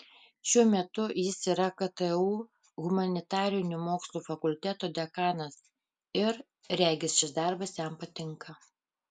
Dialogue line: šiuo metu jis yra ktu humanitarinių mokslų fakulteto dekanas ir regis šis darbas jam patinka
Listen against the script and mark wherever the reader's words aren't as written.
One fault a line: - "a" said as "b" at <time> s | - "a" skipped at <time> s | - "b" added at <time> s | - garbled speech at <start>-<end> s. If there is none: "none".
none